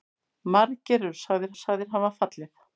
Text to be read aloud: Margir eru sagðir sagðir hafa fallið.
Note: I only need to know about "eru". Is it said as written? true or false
true